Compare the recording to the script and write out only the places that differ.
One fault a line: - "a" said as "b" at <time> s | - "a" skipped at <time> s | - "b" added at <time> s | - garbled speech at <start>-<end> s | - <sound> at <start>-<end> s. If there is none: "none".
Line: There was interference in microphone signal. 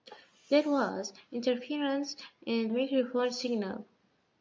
none